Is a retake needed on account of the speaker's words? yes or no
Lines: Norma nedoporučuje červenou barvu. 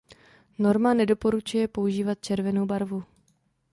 yes